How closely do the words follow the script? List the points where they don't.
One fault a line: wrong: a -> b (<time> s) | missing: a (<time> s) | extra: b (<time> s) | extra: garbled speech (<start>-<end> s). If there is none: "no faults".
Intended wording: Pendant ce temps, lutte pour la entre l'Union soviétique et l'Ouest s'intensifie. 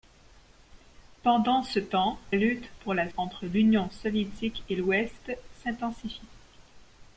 no faults